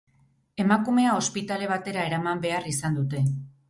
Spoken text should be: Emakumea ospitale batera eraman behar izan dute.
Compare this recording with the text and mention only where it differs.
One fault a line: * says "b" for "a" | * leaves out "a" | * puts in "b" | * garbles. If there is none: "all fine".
all fine